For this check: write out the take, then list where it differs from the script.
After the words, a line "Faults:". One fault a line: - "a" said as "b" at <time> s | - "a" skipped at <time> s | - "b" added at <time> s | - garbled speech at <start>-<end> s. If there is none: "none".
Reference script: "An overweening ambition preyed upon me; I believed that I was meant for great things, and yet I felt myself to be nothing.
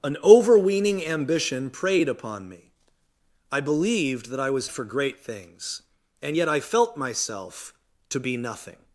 "An overweening ambition preyed upon me; I believed that I was for great things, and yet I felt myself to be nothing.
Faults:
- "meant" skipped at 4.7 s